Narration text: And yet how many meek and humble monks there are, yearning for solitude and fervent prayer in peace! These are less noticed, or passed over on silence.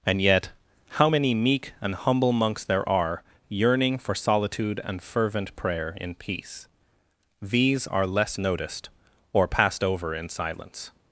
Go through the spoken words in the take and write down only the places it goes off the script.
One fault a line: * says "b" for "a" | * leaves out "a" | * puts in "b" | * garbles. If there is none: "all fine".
* says "in" for "on"